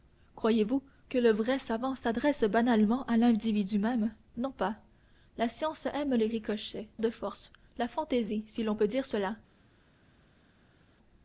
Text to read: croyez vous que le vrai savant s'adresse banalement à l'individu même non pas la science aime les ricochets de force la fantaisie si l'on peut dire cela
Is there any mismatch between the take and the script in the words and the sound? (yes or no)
no